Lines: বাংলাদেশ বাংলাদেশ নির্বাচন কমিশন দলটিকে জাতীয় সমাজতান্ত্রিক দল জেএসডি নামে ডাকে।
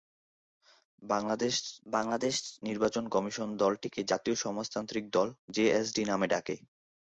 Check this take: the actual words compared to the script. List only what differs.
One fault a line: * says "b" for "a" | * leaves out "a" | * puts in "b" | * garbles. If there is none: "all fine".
all fine